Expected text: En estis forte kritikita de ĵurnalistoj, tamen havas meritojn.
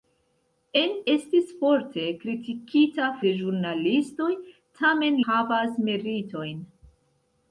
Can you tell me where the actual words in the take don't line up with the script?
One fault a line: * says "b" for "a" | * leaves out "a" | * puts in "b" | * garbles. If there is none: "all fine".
all fine